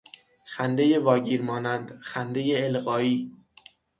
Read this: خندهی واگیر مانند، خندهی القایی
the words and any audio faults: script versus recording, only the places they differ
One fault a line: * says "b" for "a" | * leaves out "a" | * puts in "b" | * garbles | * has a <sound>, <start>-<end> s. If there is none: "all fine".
all fine